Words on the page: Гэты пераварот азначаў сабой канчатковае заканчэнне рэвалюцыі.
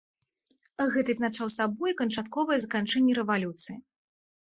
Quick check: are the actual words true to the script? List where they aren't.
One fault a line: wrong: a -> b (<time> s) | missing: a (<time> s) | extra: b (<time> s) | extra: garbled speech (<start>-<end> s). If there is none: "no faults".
missing: пераварот (1.1 s)